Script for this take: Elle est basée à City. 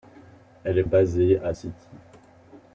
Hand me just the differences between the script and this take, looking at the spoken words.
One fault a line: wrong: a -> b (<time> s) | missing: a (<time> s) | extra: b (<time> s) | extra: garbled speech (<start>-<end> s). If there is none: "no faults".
no faults